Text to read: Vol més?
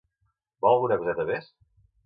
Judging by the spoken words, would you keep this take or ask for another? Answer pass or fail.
fail